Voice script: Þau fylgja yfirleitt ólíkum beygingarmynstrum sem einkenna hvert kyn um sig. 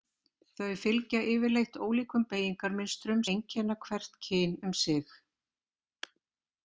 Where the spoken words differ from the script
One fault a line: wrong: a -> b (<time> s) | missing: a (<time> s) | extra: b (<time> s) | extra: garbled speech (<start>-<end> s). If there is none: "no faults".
missing: sem (3.2 s)